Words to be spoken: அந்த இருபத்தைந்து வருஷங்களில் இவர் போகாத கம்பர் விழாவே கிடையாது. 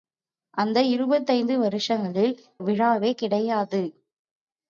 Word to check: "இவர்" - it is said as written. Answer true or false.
false